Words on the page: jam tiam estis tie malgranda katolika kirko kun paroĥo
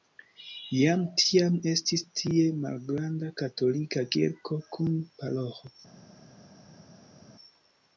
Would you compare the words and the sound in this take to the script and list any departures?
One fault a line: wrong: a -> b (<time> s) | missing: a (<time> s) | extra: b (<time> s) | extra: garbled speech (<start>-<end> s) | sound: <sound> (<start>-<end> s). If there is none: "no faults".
no faults